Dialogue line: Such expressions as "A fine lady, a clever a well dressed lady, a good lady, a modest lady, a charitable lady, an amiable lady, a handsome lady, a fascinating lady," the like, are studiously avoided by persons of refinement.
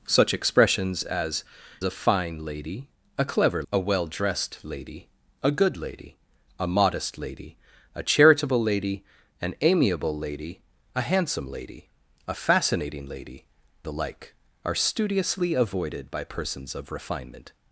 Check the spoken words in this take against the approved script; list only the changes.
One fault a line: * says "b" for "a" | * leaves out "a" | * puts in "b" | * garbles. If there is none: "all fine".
all fine